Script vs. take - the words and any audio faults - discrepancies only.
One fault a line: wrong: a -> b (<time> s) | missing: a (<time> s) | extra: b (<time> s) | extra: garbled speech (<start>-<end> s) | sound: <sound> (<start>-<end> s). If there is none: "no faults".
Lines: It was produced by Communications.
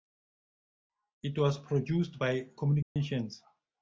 sound: dropout (2.8-3.0 s)